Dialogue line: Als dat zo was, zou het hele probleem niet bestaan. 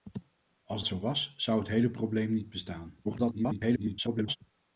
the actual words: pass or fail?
fail